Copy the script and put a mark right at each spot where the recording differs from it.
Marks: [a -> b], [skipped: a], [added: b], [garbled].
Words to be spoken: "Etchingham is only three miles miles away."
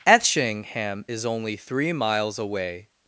"Etchingham is only three miles [skipped: miles] away."